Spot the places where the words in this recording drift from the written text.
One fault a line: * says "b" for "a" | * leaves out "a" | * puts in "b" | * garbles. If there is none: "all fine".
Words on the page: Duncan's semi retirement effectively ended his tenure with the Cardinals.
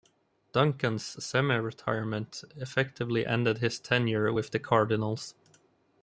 all fine